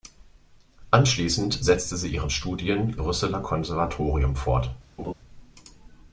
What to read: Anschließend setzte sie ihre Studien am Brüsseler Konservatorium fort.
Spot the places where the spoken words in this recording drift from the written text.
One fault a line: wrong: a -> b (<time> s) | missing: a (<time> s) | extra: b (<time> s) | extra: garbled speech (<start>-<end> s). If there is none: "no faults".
missing: am (2.9 s)